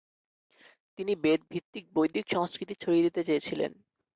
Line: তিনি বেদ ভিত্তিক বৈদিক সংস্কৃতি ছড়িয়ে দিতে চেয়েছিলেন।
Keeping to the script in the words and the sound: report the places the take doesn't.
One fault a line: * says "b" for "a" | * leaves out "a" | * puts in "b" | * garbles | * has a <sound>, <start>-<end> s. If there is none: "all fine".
all fine